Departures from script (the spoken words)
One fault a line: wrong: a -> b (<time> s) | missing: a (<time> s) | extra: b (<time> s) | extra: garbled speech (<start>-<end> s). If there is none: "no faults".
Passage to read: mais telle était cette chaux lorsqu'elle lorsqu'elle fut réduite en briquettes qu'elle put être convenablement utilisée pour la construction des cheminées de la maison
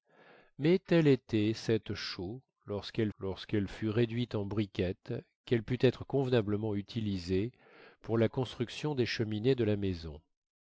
no faults